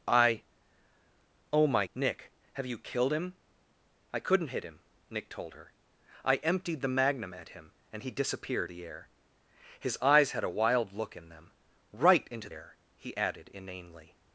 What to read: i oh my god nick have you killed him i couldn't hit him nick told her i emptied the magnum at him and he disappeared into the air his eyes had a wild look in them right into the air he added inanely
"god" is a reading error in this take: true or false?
true